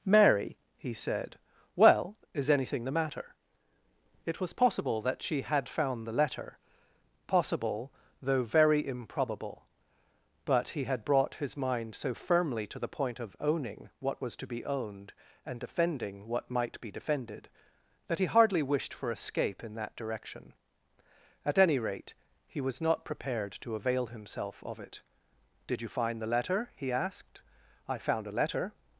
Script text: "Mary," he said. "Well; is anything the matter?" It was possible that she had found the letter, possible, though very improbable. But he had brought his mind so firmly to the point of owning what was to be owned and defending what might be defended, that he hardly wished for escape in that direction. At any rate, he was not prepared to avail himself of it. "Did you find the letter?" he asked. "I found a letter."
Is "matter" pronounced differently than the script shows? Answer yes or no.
no